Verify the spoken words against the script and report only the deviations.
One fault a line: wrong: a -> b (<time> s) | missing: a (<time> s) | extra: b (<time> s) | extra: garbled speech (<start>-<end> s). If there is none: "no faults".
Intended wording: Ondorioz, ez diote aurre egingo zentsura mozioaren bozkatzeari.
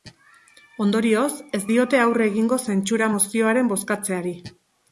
no faults